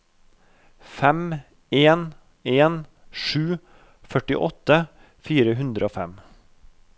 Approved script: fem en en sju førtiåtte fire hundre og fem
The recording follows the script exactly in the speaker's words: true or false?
true